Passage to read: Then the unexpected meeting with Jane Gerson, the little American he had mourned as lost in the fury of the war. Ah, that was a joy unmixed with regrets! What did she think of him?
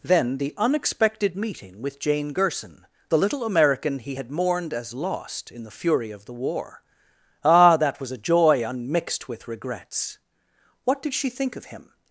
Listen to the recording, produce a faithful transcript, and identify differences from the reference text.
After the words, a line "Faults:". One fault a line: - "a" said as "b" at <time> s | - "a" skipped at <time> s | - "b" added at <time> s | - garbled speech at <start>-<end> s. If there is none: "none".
Then the unexpected meeting with Jane Gerson, the little American he had mourned as lost in the fury of the war. Ah, that was a joy unmixed with regrets! What did she think of him?
Faults:
none